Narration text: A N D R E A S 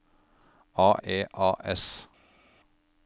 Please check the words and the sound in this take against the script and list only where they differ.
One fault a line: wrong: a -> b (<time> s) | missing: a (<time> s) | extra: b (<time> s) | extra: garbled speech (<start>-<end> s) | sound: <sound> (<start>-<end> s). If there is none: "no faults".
missing: N D R (0.9 s)